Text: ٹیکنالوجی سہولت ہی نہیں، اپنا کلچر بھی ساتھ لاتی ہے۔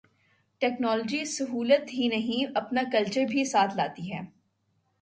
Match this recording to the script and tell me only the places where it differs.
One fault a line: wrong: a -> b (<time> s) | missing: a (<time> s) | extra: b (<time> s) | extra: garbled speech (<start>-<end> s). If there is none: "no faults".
no faults